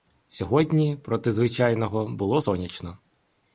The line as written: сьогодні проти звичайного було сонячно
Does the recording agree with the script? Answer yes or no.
yes